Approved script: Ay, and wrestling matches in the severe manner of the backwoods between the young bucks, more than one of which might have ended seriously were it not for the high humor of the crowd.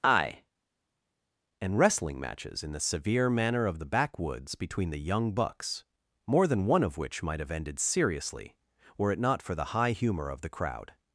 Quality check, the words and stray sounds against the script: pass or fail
pass